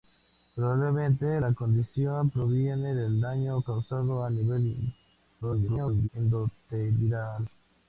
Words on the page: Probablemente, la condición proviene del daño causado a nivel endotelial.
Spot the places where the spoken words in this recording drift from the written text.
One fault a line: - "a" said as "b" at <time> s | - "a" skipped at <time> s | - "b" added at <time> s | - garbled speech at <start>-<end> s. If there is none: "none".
- garbled speech at 5.4-6.1 s